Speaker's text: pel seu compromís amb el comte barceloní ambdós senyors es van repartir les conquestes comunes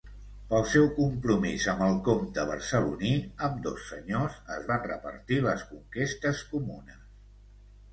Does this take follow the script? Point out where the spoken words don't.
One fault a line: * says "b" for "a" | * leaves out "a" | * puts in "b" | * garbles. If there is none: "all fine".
all fine